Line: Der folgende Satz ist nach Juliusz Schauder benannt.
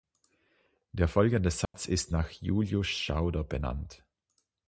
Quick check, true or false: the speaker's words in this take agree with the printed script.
true